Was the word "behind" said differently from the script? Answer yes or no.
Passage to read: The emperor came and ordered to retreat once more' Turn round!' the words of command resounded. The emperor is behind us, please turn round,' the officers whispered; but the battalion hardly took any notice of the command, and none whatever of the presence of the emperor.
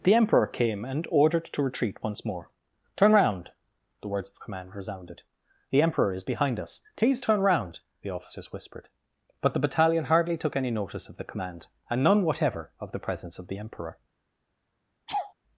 no